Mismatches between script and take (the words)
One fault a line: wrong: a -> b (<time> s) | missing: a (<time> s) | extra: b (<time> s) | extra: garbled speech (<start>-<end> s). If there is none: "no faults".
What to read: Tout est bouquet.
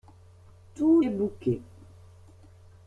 no faults